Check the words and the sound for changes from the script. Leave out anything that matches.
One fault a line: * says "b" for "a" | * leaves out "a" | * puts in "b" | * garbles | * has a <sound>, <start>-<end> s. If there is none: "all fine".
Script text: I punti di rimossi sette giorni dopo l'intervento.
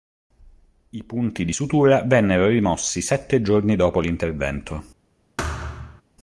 * puts in "sutura vennero"
* has a thud, 5.4-6.0 s